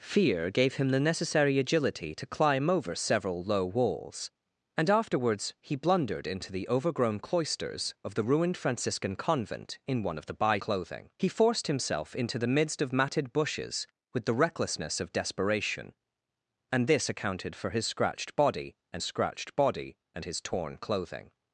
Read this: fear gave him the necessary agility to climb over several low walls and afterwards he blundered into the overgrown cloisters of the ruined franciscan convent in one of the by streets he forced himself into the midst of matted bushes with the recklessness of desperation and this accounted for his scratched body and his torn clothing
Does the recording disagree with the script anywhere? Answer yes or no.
yes